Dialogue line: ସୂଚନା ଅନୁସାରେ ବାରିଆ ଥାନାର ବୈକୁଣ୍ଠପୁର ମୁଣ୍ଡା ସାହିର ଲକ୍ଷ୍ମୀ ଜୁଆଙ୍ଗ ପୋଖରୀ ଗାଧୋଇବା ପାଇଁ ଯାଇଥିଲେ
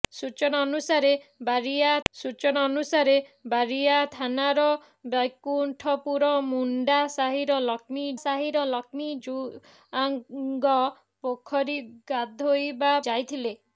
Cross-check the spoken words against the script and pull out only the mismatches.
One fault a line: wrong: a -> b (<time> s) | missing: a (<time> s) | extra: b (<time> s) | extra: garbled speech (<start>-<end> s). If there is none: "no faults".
extra: ସୂଚନା ଅନୁସାରେ ବାରିଆ (2.1 s)
extra: ସାହିର ଲକ୍ଷ୍ମୀ (8.2 s)
missing: ପାଇଁ (12.9 s)